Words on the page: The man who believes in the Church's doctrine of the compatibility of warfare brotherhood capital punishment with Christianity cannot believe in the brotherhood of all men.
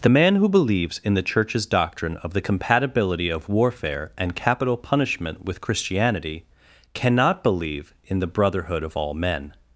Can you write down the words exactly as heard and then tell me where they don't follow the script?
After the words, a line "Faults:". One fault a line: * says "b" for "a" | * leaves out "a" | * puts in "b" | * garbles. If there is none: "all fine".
The man who believes in the Church's doctrine of the compatibility of warfare and capital punishment with Christianity cannot believe in the brotherhood of all men.
Faults:
* says "and" for "brotherhood"